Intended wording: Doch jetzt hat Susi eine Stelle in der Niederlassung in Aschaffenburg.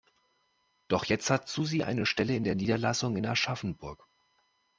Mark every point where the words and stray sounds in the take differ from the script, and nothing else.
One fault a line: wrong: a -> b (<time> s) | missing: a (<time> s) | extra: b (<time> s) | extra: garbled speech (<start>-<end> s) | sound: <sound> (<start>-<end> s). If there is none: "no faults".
no faults